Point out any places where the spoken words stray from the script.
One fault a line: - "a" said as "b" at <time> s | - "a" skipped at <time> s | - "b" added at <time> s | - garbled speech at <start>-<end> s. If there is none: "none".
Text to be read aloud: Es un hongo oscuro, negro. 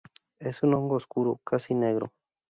- "casi" added at 1.4 s